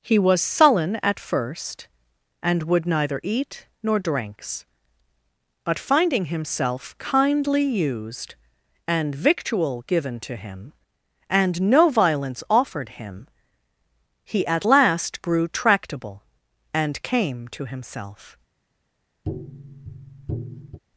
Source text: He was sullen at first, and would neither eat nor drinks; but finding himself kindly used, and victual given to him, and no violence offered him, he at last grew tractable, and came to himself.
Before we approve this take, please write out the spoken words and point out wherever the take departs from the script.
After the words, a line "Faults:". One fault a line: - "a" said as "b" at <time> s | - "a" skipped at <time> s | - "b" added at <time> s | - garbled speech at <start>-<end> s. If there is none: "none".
He was sullen at first, and would neither eat nor drinks; but finding himself kindly used, and victual given to him, and no violence offered him, he at last grew tractable, and came to himself.
Faults:
none